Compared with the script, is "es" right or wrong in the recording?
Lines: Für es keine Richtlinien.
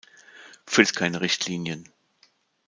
right